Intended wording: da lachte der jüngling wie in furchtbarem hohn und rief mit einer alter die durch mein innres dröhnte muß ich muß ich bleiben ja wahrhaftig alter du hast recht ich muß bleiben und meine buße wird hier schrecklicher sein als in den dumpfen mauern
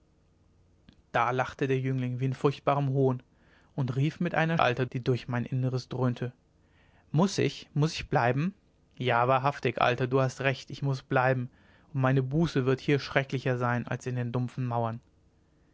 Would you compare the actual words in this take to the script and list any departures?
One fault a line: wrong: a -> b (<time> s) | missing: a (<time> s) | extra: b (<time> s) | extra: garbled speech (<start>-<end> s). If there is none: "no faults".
no faults